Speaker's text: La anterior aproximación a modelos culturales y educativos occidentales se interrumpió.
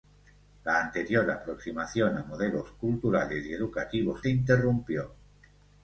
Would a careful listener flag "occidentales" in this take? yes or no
yes